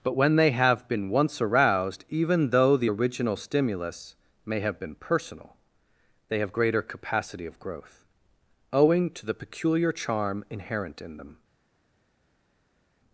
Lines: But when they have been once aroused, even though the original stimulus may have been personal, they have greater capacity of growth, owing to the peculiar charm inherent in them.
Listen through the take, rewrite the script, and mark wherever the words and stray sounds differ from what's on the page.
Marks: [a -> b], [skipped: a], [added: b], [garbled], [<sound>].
But when they have been once aroused, even though the original stimulus may have been personal, they have greater capacity of growth, owing to the peculiar charm inherent in them.